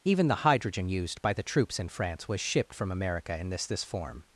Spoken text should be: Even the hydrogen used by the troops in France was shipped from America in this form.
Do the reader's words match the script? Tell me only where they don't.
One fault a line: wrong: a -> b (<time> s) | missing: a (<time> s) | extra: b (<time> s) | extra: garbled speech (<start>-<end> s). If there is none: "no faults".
extra: this (3.7 s)